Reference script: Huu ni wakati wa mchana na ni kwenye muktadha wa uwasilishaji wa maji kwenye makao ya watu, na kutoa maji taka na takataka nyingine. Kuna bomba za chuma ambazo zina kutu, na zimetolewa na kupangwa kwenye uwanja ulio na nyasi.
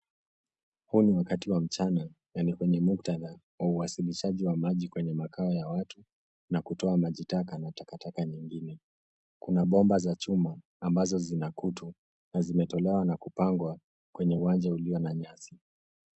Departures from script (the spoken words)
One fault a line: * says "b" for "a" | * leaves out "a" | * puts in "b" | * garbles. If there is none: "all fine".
all fine